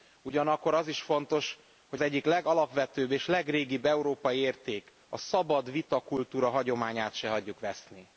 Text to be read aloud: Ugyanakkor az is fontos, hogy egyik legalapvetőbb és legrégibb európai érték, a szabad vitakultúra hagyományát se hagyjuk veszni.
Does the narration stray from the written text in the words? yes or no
no